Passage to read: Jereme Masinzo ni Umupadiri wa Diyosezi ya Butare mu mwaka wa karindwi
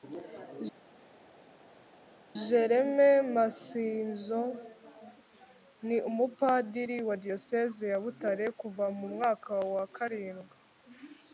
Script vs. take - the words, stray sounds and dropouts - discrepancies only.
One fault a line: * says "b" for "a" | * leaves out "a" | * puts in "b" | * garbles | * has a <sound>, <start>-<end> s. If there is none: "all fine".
* puts in "kuva"